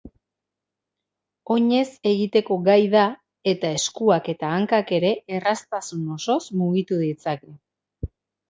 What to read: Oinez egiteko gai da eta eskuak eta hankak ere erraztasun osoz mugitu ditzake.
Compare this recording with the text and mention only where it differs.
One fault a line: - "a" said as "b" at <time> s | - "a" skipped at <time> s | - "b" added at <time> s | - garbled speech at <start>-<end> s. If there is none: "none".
none